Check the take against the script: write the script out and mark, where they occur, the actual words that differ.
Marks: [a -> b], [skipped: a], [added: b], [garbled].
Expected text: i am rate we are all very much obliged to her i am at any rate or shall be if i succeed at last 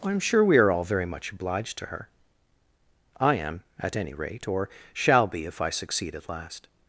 i am [rate -> sure] we are all very much obliged to her i am at any rate or shall be if i succeed at last